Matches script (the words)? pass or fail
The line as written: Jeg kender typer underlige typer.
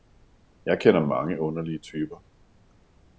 fail